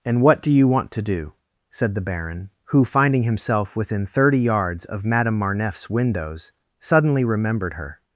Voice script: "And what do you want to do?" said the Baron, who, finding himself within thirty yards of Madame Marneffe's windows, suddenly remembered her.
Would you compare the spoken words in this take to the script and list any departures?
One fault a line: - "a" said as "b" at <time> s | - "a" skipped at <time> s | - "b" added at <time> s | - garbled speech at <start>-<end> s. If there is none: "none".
none